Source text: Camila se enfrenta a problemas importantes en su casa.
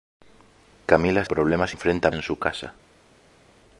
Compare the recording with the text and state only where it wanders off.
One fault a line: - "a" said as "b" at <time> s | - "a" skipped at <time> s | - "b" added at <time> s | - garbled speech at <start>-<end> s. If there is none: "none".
- "se enfrenta" skipped at 1.2 s
- "importantes" said as "enfrenta" at 1.7 s